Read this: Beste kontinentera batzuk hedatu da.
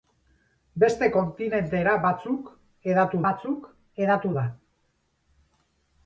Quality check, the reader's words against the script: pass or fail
fail